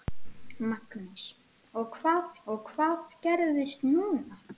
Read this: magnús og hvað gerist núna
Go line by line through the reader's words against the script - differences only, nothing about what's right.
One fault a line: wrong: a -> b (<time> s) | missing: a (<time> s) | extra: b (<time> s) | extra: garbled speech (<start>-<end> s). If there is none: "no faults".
extra: og hvað (2.5 s)